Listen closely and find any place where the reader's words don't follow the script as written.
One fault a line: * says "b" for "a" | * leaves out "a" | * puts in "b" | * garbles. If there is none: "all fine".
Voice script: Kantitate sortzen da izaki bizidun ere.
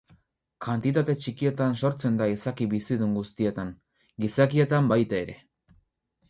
* puts in "txikietan"
* puts in "guztietan gizakietan baita"